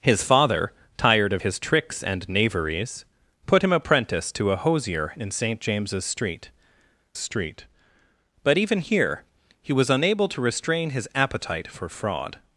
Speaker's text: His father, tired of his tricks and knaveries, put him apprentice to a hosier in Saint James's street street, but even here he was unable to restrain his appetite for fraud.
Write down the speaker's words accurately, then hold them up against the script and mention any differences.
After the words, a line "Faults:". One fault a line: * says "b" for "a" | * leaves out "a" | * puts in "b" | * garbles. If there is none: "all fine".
His father, tired of his tricks and knaveries, put him apprentice to a hosier in Saint James's street street, but even here he was unable to restrain his appetite for fraud.
Faults:
all fine